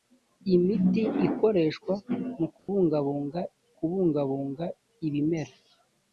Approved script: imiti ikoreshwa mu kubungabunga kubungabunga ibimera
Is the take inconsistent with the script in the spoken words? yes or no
no